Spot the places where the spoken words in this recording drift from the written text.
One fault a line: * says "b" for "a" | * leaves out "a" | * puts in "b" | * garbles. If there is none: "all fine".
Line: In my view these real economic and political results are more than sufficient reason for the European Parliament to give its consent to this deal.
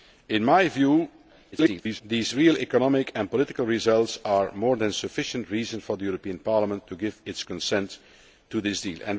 * garbles